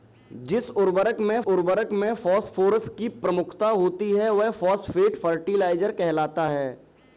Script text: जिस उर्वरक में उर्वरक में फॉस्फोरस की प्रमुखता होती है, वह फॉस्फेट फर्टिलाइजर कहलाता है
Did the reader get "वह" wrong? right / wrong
right